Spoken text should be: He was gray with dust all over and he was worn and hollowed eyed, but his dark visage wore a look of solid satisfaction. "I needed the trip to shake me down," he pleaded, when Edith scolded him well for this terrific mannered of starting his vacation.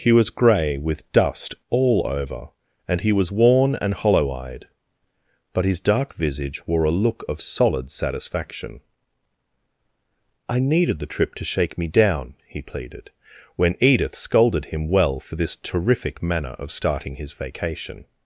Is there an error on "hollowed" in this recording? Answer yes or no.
yes